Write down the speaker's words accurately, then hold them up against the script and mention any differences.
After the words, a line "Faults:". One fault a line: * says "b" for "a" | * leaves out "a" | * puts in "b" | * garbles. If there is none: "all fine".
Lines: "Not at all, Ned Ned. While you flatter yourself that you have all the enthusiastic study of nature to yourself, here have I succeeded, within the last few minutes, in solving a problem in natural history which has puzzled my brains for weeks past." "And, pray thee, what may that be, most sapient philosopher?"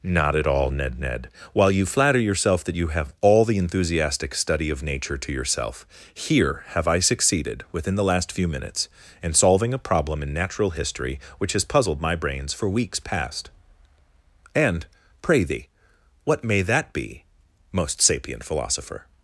"Not at all, Ned Ned. While you flatter yourself that you have all the enthusiastic study of nature to yourself, here have I succeeded, within the last few minutes, in solving a problem in natural history which has puzzled my brains for weeks past." "And, pray thee, what may that be, most sapient philosopher?"
Faults:
all fine